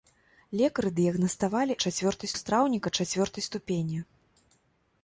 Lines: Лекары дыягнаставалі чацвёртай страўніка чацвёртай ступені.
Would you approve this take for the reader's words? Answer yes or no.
yes